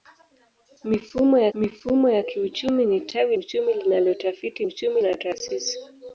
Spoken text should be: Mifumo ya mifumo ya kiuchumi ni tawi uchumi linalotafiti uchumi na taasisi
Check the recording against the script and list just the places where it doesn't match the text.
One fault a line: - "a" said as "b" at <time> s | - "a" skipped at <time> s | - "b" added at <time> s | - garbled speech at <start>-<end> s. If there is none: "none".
none